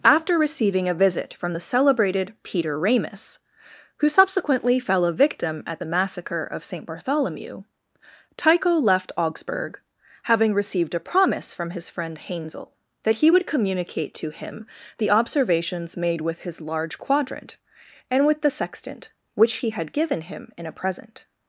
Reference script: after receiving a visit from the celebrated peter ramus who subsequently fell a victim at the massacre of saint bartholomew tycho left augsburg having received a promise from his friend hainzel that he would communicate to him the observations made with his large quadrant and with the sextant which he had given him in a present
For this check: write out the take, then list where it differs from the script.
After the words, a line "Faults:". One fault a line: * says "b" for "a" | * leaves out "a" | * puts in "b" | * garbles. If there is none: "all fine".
after receiving a visit from the celebrated peter ramus who subsequently fell a victim at the massacre of saint bartholomew tycho left augsburg having received a promise from his friend hainzel that he would communicate to him the observations made with his large quadrant and with the sextant which he had given him in a present
Faults:
all fine